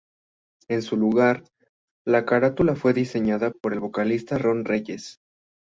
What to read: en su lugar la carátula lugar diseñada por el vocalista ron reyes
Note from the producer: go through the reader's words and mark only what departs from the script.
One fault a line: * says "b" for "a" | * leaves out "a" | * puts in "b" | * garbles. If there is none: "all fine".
* says "fue" for "lugar"